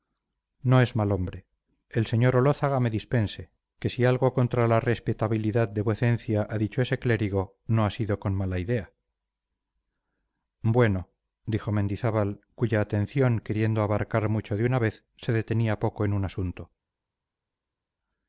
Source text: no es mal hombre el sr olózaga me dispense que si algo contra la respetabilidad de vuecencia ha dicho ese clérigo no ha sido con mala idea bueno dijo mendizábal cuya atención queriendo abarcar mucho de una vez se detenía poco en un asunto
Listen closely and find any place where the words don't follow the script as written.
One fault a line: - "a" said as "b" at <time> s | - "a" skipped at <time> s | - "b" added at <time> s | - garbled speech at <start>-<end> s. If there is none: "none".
none